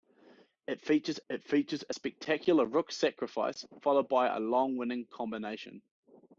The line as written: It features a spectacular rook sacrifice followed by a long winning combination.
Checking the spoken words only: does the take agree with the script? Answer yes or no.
no